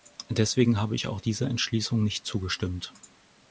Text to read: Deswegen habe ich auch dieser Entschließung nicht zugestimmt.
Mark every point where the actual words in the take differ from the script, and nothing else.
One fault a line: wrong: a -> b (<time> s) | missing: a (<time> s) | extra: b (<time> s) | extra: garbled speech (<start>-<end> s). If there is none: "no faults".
no faults